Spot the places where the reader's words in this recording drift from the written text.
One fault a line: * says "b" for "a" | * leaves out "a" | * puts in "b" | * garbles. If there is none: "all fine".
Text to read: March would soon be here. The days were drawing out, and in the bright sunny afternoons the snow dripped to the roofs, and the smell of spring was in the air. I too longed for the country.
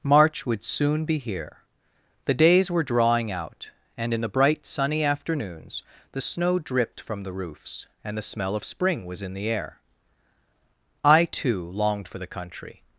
* says "from" for "to"